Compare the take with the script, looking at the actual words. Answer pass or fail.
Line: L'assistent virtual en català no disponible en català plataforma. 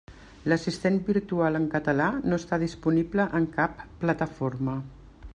fail